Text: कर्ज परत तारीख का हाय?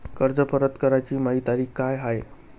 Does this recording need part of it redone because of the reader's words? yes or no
yes